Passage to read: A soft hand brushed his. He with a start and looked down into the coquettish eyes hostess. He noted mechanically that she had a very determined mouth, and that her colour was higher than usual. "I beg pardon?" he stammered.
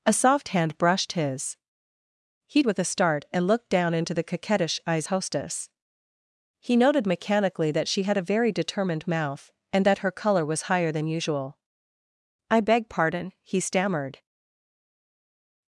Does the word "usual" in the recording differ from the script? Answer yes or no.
no